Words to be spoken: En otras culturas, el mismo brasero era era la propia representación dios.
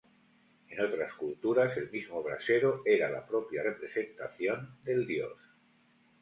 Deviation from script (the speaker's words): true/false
true